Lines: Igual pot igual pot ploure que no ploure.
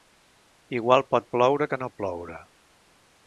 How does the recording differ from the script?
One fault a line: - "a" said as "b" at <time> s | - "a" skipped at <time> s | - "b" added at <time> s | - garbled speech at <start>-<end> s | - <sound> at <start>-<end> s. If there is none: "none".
- "igual pot" skipped at 1.3 s